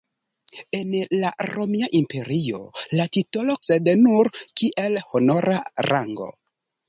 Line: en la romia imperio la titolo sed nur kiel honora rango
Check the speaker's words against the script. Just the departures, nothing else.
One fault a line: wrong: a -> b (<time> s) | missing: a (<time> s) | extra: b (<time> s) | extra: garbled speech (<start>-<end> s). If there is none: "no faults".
no faults